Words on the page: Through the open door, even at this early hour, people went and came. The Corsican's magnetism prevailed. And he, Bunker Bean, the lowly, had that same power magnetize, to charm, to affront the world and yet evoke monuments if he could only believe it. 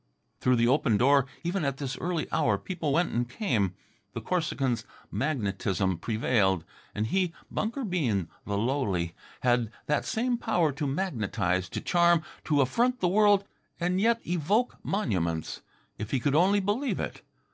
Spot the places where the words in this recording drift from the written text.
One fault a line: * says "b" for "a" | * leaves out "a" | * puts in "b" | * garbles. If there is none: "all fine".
* puts in "to"